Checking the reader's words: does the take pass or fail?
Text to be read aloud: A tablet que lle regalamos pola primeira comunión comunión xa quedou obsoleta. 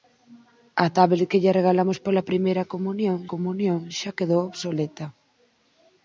pass